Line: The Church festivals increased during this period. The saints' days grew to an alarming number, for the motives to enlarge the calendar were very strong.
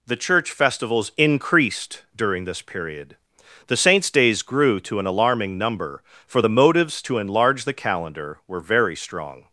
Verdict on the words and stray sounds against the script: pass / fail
pass